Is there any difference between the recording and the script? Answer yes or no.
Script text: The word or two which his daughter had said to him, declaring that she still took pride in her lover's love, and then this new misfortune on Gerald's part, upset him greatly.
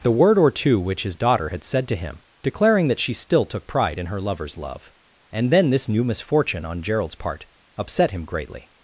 no